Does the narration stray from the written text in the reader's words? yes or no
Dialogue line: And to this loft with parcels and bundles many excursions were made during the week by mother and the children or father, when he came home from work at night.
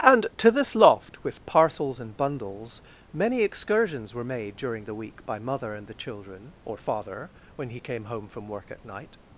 no